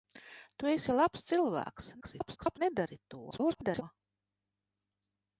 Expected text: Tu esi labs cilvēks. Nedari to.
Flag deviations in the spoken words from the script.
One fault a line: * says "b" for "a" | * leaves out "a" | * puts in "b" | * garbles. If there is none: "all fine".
* garbles
* garbles